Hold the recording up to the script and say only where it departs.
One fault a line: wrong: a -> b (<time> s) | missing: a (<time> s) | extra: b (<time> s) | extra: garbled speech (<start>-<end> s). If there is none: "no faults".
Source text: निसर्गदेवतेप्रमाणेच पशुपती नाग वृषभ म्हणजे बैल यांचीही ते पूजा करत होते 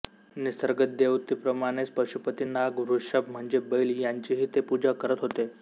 no faults